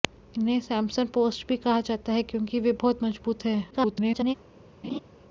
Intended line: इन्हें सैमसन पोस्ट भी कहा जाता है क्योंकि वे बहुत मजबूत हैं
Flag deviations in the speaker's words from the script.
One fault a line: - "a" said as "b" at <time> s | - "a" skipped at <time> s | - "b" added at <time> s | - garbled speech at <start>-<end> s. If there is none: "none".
- garbled speech at 3.7-4.3 s